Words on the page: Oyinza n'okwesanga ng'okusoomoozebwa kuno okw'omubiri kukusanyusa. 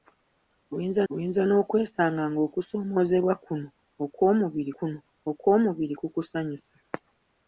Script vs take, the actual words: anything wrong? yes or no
yes